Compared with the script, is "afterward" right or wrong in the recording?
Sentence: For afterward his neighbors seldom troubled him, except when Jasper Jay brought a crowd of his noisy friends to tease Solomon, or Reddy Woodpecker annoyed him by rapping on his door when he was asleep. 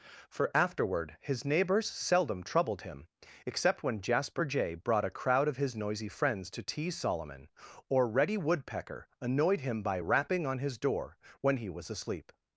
right